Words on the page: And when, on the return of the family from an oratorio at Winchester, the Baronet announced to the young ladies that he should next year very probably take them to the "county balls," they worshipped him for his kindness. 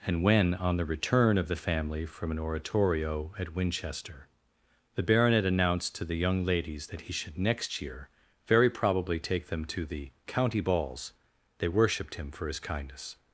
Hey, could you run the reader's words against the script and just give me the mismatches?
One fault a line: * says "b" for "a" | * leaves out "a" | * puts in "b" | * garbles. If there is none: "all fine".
all fine